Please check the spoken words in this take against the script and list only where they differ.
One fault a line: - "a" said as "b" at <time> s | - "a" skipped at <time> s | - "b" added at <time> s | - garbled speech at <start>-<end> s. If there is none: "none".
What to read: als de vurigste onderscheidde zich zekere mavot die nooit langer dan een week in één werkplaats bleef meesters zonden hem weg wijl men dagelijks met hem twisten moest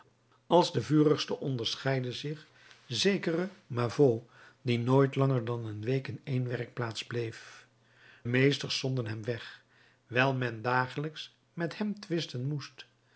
none